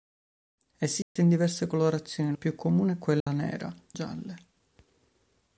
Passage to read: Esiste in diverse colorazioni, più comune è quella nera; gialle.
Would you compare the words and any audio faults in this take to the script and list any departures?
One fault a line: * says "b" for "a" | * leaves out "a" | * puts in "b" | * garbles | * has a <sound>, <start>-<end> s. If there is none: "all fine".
* has a dropout, 1.0-1.2 s
* has a dropout, 3.2-3.3 s